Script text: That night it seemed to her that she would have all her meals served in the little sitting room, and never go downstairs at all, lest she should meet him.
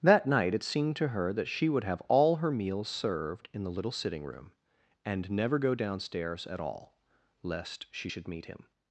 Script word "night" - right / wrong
right